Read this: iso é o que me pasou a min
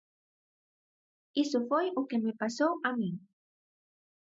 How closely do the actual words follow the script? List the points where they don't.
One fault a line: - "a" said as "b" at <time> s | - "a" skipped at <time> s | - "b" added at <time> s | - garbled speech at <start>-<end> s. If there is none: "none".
- "é" said as "foi" at 1.7 s